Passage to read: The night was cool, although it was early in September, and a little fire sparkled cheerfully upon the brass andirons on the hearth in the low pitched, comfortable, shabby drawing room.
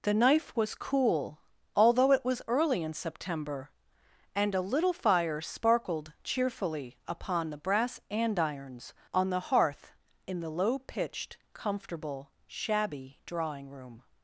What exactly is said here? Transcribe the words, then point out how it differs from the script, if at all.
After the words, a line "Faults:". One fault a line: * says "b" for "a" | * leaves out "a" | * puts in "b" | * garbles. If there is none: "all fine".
The knife was cool, although it was early in September, and a little fire sparkled cheerfully upon the brass andirons on the hearth in the low pitched, comfortable, shabby drawing room.
Faults:
* says "knife" for "night"